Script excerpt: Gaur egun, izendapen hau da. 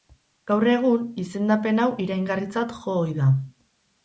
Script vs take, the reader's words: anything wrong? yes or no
yes